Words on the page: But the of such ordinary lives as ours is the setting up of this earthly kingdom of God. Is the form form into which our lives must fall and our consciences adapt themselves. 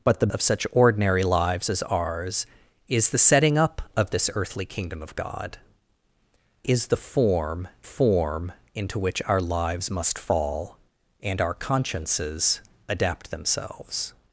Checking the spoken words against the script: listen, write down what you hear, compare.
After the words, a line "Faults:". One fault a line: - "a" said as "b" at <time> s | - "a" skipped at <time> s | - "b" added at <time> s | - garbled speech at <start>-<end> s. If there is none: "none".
But the of such ordinary lives as ours is the setting up of this earthly kingdom of God. Is the form form into which our lives must fall and our consciences adapt themselves.
Faults:
none